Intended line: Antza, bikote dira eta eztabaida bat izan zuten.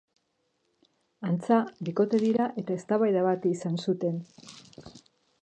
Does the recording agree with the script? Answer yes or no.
yes